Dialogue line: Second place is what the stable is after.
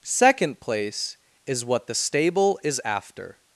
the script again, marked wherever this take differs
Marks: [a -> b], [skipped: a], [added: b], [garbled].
Second place is what the stable is after.